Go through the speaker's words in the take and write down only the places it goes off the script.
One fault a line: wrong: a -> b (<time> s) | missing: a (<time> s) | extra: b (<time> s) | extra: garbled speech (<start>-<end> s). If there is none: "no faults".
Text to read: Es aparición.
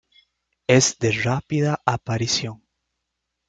extra: de rápida (1.0 s)